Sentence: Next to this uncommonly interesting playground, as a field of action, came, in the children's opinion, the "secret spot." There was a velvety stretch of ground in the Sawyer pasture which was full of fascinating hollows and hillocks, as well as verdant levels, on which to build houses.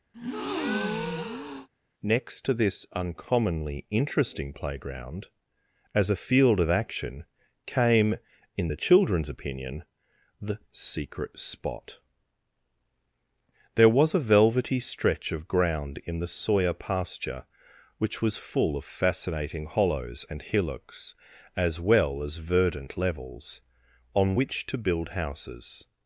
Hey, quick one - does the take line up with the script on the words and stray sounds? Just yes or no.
no